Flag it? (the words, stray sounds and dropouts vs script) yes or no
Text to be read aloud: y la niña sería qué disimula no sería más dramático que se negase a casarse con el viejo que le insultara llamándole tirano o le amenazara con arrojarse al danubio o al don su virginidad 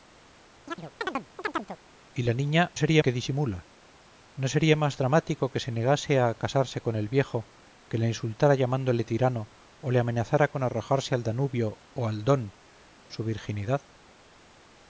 yes